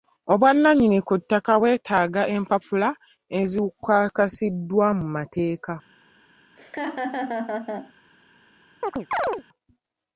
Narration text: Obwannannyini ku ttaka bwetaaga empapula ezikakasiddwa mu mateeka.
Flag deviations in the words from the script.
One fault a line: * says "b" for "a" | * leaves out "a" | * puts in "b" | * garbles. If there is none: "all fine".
all fine